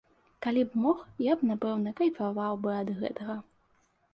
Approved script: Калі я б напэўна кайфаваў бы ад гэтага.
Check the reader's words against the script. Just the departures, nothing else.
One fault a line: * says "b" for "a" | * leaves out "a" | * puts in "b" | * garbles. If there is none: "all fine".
* puts in "б мог"